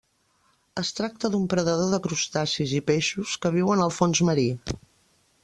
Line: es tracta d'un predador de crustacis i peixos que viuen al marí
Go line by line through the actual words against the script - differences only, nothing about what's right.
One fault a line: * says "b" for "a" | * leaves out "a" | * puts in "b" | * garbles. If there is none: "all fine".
* puts in "fons"